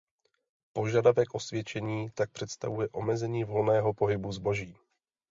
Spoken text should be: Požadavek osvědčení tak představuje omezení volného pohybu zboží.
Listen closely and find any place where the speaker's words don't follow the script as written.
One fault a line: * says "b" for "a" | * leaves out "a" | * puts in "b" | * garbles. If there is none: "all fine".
all fine